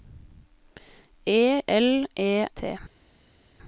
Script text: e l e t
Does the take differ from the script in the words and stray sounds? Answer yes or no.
no